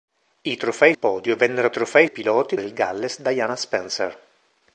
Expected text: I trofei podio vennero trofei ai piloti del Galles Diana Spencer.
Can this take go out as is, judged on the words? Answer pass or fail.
pass